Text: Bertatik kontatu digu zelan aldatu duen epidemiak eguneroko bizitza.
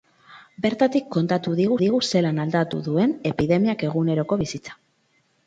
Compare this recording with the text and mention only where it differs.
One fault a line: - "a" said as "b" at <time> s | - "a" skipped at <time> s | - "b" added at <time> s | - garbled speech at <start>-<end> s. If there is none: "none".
- "digu" added at 1.8 s